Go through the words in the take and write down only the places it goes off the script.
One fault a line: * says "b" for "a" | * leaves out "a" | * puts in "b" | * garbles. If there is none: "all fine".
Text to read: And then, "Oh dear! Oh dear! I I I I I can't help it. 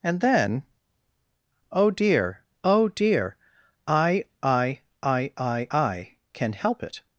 * says "can" for "can't"